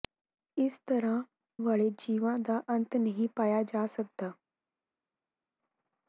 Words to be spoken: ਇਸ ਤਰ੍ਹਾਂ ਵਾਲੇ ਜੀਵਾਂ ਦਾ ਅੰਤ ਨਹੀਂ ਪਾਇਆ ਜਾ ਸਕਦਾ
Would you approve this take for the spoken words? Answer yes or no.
yes